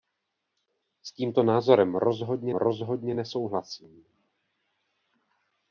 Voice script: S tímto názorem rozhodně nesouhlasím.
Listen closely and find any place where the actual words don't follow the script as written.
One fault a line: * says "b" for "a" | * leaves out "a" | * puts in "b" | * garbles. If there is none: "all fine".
* puts in "rozhodně"